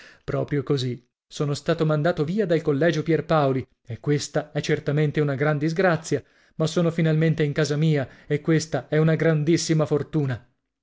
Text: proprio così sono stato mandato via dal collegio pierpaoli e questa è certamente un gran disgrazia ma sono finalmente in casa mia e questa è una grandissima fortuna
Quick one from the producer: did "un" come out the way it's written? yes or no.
no